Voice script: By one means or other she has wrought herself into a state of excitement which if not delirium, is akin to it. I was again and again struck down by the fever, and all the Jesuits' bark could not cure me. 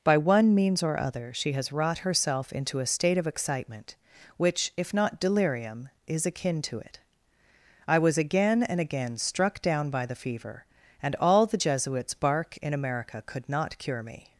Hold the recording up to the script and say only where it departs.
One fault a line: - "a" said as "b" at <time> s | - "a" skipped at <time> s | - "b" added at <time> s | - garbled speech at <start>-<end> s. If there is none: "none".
- "in America" added at 12.6 s